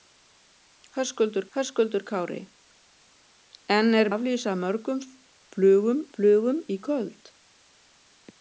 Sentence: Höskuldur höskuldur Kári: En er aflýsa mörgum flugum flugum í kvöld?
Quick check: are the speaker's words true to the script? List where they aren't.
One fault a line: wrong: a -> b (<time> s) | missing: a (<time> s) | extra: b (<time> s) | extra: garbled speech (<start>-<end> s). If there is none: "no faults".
no faults